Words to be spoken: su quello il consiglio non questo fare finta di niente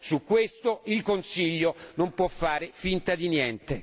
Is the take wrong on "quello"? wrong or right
wrong